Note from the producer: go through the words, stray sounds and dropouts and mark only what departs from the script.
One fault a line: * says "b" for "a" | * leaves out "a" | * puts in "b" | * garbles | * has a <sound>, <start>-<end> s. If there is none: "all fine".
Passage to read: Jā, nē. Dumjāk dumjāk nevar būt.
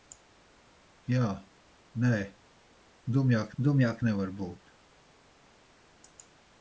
all fine